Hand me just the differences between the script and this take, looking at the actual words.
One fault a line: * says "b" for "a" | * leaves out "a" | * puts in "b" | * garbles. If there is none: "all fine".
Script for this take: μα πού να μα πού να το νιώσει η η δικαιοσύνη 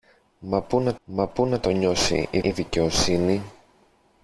all fine